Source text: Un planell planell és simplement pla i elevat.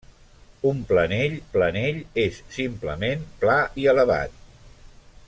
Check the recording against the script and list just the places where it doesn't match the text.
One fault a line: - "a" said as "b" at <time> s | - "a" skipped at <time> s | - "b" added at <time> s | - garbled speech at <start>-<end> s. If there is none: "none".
none